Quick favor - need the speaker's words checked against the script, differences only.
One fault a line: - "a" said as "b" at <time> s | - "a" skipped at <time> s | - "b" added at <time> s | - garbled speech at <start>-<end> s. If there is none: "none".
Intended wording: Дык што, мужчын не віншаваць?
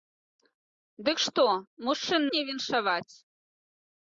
none